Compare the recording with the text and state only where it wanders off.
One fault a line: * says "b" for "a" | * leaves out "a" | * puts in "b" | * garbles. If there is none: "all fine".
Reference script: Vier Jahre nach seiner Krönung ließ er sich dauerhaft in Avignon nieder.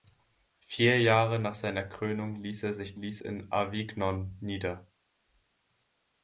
* says "ließ" for "dauerhaft"